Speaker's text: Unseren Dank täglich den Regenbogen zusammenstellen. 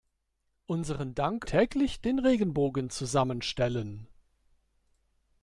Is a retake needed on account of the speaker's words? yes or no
no